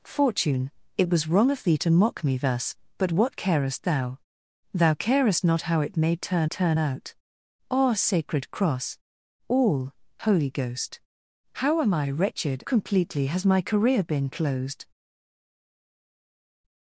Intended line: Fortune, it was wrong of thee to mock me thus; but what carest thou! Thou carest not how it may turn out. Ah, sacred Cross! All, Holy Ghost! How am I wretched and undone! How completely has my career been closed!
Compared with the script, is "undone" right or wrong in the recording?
wrong